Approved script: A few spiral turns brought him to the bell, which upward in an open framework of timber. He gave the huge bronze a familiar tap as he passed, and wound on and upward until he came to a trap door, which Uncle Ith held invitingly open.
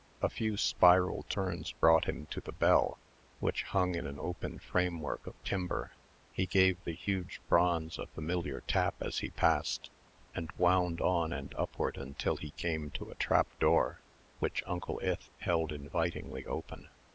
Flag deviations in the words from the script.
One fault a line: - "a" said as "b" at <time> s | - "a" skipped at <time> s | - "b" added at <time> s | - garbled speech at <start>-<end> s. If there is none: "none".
- "upward" said as "hung" at 3.6 s